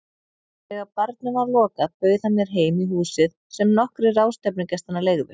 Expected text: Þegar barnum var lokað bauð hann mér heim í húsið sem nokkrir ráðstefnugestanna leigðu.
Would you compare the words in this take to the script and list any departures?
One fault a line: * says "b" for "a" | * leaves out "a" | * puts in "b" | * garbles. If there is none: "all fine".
all fine